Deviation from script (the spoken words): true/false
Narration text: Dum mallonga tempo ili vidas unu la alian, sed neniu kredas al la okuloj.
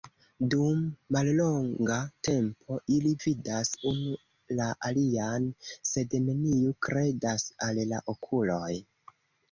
false